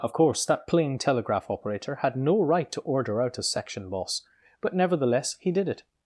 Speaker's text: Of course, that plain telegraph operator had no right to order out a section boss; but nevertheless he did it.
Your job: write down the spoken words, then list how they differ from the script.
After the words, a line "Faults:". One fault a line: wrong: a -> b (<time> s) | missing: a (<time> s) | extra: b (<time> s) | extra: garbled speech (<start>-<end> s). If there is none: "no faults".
Of course, that plain telegraph operator had no right to order out a section boss; but nevertheless he did it.
Faults:
no faults